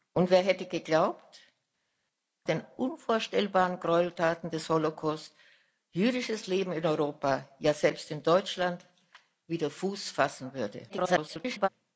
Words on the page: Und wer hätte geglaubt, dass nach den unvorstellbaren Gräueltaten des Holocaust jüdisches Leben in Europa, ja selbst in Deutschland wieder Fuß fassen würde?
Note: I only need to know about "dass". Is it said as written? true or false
false